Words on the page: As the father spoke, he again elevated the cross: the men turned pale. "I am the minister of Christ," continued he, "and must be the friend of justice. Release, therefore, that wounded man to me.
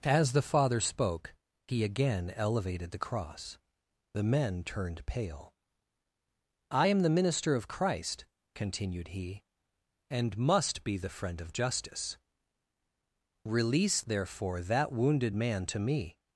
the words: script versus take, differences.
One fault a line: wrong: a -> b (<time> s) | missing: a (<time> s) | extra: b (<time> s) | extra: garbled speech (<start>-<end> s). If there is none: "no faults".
no faults